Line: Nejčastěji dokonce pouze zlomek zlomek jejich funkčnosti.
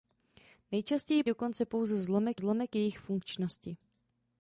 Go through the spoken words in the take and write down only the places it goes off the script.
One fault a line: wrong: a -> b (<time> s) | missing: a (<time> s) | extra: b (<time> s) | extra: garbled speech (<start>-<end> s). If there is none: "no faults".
no faults